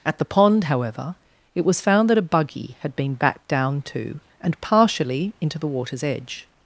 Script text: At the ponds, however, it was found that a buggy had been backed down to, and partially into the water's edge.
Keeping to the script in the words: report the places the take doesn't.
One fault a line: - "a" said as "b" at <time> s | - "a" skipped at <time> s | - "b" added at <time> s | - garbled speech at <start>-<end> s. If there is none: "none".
- "ponds" said as "pond" at 0.2 s